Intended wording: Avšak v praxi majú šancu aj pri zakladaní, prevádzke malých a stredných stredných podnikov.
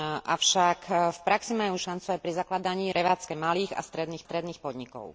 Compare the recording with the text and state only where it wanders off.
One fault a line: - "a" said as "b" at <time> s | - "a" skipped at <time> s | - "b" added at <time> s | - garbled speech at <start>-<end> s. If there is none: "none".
none